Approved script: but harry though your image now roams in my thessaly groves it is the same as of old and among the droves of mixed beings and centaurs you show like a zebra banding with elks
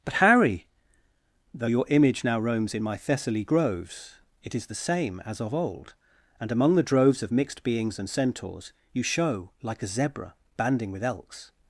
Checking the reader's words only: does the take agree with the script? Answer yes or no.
yes